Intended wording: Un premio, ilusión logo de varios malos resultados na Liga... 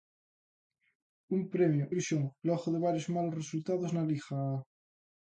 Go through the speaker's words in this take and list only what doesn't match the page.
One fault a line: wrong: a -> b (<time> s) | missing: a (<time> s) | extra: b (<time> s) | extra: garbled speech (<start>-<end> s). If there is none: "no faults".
no faults